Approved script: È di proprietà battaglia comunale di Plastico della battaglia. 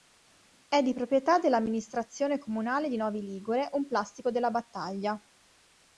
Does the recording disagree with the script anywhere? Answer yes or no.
yes